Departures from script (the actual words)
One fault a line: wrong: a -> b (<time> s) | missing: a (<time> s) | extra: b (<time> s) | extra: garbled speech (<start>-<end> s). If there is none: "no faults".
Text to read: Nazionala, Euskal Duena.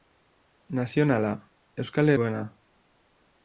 no faults